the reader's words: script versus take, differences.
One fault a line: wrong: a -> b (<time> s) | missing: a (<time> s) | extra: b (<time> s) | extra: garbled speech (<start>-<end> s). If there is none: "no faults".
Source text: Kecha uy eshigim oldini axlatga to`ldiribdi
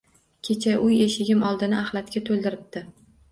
no faults